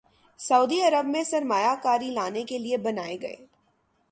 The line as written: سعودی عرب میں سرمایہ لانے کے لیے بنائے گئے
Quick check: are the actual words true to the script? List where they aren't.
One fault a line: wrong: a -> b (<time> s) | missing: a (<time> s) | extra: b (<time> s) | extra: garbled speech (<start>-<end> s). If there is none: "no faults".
extra: کاری (1.8 s)